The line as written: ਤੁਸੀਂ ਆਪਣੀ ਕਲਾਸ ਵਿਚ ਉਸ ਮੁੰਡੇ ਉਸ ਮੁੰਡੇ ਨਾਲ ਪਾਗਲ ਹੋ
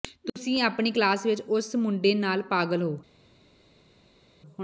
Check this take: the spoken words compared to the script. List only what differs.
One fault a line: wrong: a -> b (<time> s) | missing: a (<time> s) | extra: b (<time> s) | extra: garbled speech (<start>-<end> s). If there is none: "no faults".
missing: ਉਸ ਮੁੰਡੇ (2.1 s)